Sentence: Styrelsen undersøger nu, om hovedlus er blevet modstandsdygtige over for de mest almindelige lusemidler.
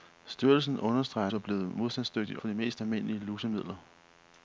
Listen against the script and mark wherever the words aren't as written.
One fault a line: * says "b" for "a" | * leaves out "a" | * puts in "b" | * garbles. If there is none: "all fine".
* leaves out "nu om hovedlus"
* leaves out "over"